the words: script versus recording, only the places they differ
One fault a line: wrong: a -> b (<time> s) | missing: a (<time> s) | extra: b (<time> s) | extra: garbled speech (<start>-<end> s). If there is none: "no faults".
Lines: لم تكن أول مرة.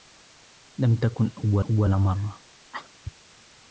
extra: أول (1.6 s)